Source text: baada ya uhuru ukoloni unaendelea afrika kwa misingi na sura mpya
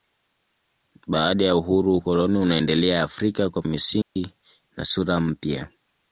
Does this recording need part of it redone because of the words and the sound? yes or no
yes